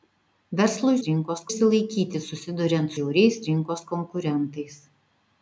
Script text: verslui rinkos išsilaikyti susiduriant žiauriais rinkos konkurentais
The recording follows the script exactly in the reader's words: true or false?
true